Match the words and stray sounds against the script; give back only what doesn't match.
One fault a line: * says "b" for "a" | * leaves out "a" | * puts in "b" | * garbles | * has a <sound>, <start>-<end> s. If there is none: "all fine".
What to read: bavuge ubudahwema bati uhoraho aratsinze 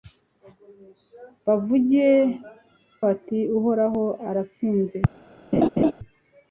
* leaves out "ubudahwema"
* has a laugh, 5.5-5.9 s